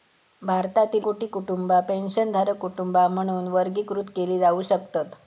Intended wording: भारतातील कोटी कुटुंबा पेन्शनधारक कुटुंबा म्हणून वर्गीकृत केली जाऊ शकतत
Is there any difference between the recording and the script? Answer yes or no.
no